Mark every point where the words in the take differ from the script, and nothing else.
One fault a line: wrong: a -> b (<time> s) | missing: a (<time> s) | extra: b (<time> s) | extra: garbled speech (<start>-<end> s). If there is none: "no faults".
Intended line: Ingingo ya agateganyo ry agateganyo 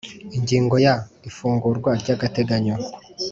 wrong: agateganyo -> ifungurwa (1.3 s)